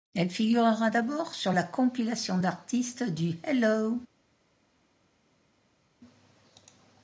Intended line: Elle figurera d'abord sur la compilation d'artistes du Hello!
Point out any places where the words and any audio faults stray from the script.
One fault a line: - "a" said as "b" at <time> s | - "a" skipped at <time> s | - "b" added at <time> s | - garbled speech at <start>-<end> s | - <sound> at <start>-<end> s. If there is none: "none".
none